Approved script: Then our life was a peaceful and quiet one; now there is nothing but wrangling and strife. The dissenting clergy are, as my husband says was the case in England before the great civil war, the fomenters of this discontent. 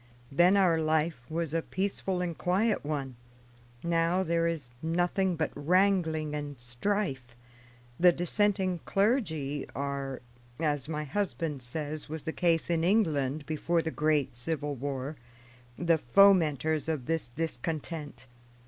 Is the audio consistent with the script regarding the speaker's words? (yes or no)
yes